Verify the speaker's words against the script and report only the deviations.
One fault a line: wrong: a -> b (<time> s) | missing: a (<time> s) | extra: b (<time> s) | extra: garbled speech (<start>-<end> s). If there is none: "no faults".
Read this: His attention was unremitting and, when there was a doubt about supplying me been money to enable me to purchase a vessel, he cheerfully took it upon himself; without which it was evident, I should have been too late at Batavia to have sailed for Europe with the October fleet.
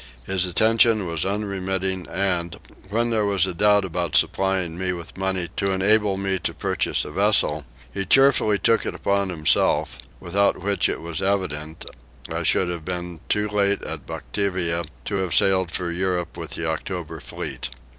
wrong: been -> with (4.9 s)